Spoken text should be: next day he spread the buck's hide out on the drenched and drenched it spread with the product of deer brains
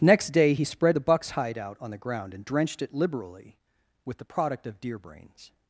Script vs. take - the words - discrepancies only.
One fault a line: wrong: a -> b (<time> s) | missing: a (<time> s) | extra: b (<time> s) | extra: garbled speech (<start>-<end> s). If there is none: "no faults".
wrong: drenched -> ground (2.0 s)
wrong: spread -> liberally (2.9 s)